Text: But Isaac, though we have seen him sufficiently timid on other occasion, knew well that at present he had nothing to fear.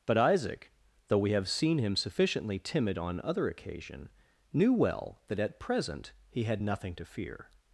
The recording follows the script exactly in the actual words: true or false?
true